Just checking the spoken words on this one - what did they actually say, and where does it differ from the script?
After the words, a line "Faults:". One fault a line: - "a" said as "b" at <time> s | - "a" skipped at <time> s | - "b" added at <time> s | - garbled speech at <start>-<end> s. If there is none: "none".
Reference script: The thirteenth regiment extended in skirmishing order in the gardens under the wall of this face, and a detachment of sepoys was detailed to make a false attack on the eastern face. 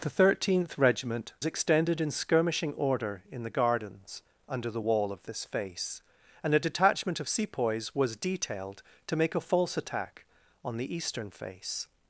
The thirteenth regiment extended in skirmishing order in the gardens under the wall of this face, and a detachment of sepoys was detailed to make a false attack on the eastern face.
Faults:
none